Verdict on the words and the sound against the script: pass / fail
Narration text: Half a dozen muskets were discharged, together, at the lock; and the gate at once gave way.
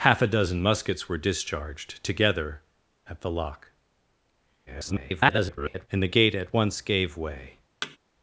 fail